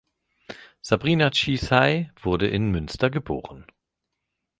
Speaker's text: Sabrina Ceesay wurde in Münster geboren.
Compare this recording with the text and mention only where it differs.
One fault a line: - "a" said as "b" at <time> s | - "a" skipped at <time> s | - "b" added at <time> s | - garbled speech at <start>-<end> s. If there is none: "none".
none